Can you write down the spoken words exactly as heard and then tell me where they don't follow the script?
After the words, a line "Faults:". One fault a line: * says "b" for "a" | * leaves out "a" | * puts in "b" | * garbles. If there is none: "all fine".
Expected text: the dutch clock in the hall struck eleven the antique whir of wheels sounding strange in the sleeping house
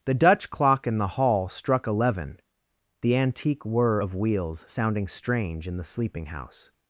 the dutch clock in the hall struck eleven the antique whir of wheels sounding strange in the sleeping house
Faults:
all fine